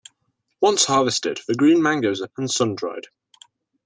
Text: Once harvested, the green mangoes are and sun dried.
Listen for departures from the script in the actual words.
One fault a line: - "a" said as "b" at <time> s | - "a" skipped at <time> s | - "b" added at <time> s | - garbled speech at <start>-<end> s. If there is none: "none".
none